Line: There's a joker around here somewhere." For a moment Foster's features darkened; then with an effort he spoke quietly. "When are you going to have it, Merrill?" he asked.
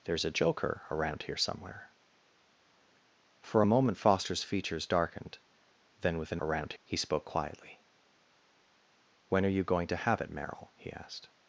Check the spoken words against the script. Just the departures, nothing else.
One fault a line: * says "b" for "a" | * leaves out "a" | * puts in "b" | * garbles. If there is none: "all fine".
* says "around" for "effort"